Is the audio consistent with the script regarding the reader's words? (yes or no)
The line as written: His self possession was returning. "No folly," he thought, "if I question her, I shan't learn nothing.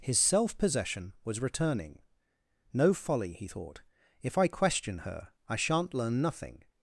yes